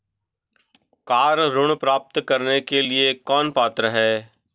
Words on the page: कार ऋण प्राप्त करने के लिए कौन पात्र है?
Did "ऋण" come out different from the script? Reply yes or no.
no